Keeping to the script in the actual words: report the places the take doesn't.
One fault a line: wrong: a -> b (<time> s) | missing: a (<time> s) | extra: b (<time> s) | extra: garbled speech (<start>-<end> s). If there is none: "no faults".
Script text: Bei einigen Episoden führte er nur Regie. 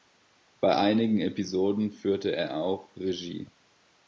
wrong: nur -> auch (2.6 s)